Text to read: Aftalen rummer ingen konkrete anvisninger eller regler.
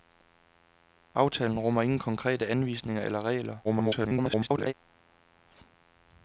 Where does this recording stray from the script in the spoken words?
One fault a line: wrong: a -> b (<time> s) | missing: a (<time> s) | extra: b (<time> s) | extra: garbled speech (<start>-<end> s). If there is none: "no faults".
extra: garbled speech (3.6-4.7 s)